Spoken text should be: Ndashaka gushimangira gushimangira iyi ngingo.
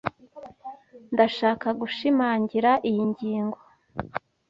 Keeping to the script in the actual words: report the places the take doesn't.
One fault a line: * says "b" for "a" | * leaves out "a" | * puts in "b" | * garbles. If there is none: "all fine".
* leaves out "gushimangira"